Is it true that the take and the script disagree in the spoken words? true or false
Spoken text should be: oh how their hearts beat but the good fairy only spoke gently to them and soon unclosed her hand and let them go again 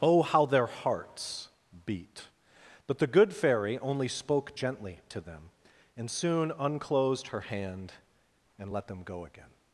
false